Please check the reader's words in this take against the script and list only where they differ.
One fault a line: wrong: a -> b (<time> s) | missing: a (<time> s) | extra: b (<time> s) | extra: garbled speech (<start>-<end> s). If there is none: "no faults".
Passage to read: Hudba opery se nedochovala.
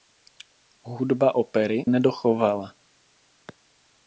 missing: se (1.9 s)